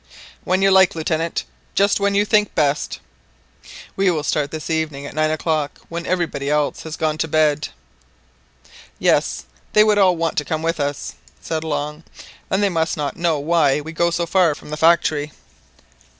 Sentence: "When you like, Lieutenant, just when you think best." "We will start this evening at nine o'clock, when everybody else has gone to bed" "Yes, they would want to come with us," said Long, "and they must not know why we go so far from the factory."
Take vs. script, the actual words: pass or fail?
fail